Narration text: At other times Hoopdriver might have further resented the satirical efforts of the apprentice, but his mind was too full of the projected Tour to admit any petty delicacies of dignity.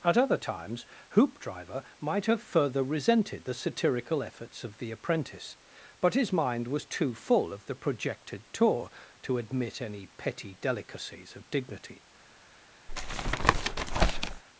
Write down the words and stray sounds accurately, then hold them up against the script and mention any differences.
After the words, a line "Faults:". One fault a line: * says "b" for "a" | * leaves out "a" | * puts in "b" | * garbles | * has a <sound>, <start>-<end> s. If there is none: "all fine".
At other times Hoopdriver might have further resented the satirical efforts of the apprentice, but his mind was too full of the projected Tour to admit any petty delicacies of dignity.
Faults:
* has a tap, 12.9-14.4 s